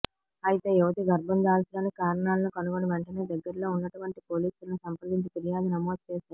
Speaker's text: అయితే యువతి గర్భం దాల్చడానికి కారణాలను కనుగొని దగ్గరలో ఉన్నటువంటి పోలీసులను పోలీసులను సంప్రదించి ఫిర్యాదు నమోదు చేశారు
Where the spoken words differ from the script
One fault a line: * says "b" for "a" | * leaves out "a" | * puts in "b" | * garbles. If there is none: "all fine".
* puts in "వెంటనే"
* leaves out "పోలీసులను"